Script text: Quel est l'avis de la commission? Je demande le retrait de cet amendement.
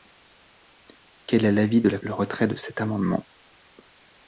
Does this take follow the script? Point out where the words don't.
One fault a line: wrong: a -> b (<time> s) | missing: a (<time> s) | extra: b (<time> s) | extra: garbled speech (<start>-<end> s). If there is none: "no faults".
missing: commission Je demande (2.0 s)